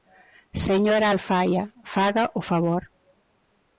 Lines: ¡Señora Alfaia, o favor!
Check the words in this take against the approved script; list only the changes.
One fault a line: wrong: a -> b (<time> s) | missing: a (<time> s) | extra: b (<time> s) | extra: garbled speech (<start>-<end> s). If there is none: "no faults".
extra: faga (1.9 s)